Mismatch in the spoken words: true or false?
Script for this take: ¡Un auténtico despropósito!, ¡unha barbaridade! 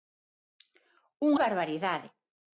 true